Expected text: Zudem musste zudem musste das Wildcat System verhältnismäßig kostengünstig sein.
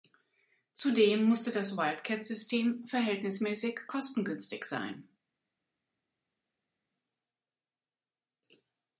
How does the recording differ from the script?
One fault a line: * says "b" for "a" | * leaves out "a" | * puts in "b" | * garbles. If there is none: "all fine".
* leaves out "zudem musste"